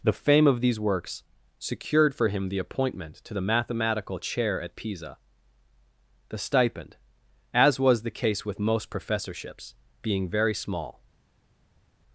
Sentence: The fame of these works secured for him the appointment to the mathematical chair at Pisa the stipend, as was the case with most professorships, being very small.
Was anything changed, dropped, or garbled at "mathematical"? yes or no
no